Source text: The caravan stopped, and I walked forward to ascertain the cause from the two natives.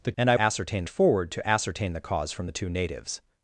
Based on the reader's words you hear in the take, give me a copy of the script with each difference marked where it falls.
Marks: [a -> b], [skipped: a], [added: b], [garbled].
The [skipped: caravan stopped,] and I [walked -> ascertain] forward to ascertain the cause from the two natives.